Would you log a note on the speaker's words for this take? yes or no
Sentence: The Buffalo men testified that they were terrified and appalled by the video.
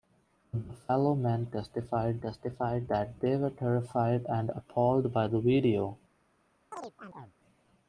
yes